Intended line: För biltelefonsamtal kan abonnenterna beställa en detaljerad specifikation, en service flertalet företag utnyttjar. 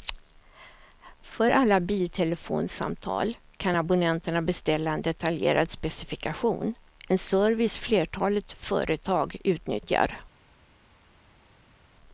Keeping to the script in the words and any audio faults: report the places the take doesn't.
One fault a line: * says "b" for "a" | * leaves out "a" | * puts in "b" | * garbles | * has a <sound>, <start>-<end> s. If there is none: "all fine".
* puts in "alla"